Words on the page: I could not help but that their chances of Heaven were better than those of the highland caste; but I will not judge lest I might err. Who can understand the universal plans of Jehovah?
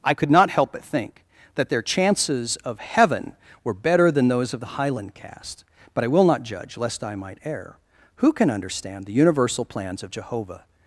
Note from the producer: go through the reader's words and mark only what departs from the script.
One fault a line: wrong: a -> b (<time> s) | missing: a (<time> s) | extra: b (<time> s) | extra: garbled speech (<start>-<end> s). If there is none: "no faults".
extra: think (0.8 s)